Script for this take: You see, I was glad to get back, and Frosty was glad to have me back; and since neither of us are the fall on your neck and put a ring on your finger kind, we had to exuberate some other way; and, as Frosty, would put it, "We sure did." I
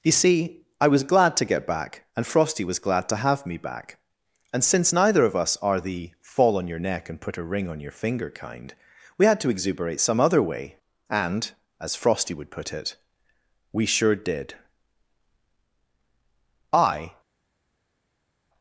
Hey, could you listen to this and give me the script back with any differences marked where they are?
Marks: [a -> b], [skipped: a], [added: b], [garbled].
You see, I was glad to get back, and Frosty was glad to have me back; and since neither of us are the fall on your neck and put a ring on your finger kind, we had to exuberate some other way; and, as Frosty, would put it, "We sure did." I